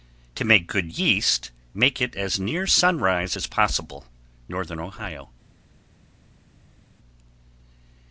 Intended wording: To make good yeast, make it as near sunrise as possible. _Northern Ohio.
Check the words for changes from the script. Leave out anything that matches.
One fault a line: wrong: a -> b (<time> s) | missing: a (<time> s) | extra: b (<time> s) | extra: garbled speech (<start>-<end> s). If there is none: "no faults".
no faults